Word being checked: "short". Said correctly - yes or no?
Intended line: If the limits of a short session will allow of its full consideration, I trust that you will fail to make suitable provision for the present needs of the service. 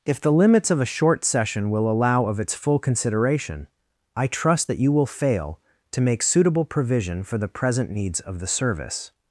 yes